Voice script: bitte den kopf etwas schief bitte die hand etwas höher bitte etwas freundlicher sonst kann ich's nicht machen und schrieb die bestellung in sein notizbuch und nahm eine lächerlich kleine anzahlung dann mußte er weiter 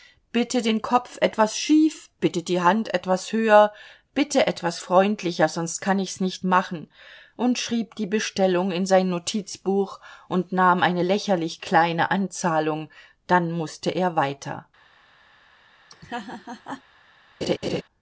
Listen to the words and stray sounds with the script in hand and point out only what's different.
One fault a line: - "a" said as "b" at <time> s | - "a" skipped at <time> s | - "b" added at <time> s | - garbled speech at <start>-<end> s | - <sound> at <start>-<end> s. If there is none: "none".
- laugh at 15.9-16.8 s
- laugh at 17.4-17.8 s